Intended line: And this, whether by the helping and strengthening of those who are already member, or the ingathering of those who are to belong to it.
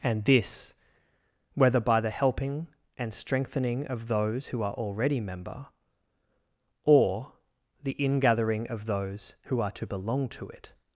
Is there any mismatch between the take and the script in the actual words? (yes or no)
no